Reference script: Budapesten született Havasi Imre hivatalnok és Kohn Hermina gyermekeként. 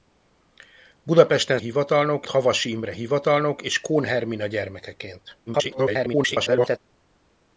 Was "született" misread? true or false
true